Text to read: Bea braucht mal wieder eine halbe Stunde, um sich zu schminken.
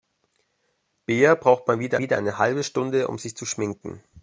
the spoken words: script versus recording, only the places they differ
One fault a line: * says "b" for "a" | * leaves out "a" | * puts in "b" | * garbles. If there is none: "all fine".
* puts in "wieder"